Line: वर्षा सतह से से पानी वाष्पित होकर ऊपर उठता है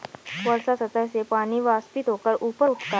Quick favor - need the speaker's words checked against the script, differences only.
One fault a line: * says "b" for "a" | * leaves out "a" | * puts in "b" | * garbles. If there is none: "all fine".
* leaves out "से"